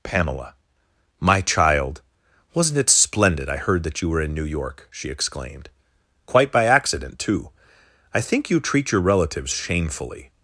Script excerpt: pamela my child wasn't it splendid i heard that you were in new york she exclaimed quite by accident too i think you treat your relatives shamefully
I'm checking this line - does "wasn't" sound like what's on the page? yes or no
yes